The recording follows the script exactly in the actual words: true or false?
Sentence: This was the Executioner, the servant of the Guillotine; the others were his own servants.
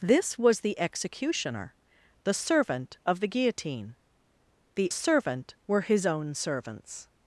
false